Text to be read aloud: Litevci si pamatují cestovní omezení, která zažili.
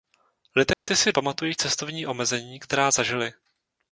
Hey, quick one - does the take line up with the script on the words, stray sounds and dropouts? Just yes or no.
no